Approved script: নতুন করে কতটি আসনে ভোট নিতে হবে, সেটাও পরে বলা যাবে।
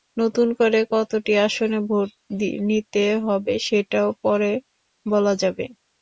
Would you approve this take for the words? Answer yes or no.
yes